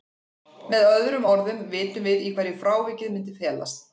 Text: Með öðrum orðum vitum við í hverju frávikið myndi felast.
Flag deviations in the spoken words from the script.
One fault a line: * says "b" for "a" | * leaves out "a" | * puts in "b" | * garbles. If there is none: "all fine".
all fine